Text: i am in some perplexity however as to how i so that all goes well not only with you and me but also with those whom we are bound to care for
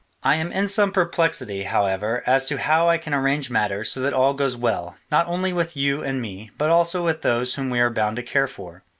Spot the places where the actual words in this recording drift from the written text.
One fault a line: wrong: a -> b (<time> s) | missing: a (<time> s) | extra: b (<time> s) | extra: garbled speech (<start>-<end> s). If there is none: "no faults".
extra: can arrange matters (3.0 s)